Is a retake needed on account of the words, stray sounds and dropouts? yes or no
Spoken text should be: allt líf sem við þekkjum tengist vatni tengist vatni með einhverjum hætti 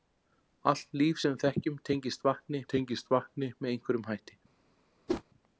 yes